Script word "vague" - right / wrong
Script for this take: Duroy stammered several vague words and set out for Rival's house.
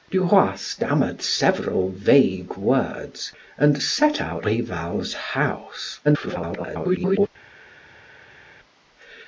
right